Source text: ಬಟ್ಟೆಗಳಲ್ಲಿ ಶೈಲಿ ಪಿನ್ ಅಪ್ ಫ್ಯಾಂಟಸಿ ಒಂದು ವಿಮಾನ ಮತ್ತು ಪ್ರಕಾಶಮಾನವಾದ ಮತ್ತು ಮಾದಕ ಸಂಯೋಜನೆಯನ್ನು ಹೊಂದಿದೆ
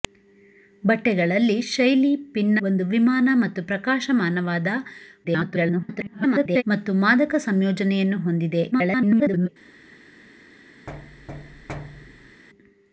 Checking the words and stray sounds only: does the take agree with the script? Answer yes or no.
no